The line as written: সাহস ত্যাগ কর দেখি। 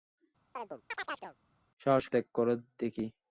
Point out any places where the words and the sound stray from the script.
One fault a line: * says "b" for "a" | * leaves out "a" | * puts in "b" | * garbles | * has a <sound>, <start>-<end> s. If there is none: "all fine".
* has a chirp, 0.5-1.4 s